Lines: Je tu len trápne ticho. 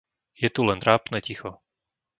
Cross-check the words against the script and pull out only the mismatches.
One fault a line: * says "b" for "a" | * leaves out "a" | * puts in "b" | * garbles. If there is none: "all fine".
all fine